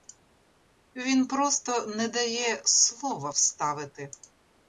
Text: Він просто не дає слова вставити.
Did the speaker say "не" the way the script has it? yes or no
yes